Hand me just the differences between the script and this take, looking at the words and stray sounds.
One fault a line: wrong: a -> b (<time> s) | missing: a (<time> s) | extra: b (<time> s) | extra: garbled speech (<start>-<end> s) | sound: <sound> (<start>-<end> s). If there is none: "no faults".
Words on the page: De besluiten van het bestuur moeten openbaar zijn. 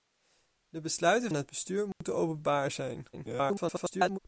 missing: van (1.3 s)
sound: dropout (1.9-2.0 s)
extra: garbled speech (3.1-4.2 s)